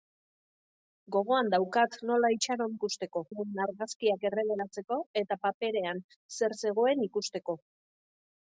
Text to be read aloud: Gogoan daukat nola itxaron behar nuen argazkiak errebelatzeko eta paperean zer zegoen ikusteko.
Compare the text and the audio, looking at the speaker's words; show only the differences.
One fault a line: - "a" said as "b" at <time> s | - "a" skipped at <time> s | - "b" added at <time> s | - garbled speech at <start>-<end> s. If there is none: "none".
- "behar" said as "ikusteko" at 2.8 s